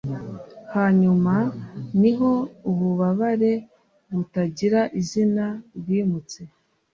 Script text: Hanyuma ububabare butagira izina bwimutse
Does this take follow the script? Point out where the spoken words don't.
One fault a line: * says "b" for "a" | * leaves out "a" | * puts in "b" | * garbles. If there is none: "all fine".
* puts in "niho"